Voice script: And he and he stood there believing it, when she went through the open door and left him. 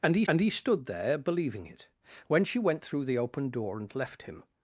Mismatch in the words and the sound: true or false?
false